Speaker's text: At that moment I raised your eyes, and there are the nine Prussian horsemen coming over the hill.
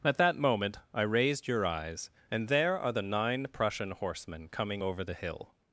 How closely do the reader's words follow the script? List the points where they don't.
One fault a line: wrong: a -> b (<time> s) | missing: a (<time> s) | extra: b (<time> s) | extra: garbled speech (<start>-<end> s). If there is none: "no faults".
no faults